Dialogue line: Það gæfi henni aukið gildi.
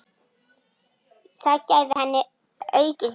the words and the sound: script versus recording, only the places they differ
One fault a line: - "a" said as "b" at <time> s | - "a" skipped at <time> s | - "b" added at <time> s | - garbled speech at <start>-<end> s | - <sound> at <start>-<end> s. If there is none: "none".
- dropout at 1.9-2.0 s